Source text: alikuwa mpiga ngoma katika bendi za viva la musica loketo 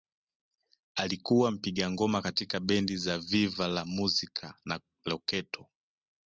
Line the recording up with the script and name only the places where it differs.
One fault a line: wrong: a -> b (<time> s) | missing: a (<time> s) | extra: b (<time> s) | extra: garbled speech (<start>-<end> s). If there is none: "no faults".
extra: na (4.7 s)